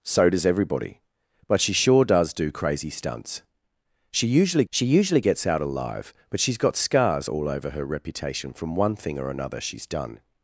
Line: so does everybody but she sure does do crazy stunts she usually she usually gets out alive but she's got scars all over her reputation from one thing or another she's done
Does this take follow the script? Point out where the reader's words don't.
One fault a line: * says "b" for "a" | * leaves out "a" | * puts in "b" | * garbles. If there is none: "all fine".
all fine